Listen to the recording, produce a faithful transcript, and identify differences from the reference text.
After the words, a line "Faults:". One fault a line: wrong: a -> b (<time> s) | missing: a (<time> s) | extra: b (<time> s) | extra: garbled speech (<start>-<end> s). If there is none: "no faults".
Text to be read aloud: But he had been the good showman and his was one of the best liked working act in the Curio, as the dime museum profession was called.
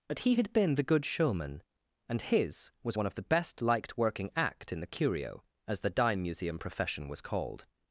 But he had been the good showman and his was one of the best liked working act in the Curio, as the dime museum profession was called.
Faults:
no faults